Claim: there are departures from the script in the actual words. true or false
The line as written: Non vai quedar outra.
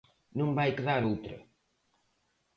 false